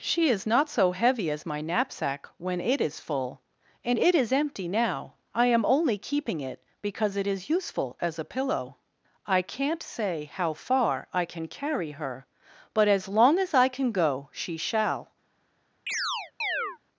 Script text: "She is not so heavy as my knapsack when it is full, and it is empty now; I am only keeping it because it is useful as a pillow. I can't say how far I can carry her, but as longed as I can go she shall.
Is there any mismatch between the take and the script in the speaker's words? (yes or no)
yes